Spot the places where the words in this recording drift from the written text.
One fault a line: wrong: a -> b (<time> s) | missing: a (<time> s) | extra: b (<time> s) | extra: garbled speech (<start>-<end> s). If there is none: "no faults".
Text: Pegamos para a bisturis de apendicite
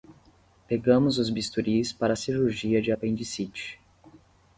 extra: os bisturis (1.2 s)
wrong: bisturis -> cirurgia (2.1 s)